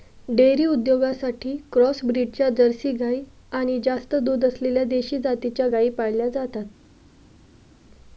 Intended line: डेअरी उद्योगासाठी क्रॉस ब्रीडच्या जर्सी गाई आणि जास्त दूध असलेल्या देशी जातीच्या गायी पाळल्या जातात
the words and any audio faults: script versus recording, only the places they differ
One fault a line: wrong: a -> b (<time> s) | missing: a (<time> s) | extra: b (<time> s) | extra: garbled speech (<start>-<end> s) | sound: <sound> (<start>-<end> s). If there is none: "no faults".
no faults